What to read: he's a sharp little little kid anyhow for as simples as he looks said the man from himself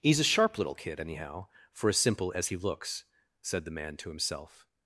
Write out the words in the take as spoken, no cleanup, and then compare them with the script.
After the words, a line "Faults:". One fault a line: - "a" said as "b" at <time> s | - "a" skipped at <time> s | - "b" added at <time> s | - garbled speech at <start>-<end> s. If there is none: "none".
he's a sharp little kid anyhow for as simple as he looks said the man to himself
Faults:
- "little" skipped at 0.8 s
- "simples" said as "simple" at 2.0 s
- "from" said as "to" at 4.0 s